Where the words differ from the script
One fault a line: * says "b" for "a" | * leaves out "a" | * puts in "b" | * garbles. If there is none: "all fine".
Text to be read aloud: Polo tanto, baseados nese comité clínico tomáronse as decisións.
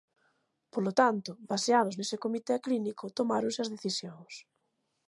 all fine